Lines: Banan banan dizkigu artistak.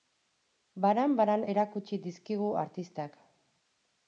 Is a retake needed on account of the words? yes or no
yes